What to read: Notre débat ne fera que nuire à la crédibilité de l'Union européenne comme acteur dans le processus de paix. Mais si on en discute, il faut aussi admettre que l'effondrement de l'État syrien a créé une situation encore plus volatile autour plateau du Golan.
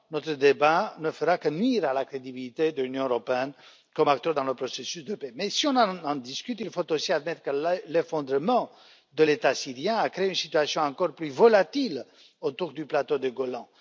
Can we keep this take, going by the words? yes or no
no